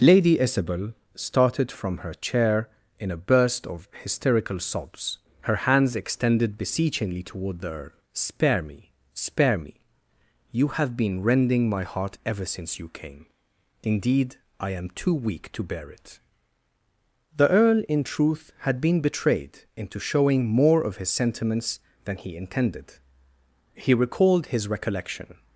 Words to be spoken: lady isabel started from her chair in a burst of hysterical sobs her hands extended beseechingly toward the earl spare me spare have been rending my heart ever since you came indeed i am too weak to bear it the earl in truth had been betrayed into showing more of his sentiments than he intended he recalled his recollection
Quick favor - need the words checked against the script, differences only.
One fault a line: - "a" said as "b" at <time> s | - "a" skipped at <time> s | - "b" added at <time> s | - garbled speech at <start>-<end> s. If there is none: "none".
- "me you" added at 9.6 s